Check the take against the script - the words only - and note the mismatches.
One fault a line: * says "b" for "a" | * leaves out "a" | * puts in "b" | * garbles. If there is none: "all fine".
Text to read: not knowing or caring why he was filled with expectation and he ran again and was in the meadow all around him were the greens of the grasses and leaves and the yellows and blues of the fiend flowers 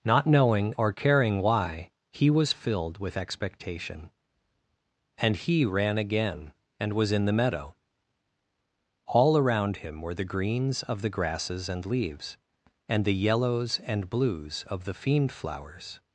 all fine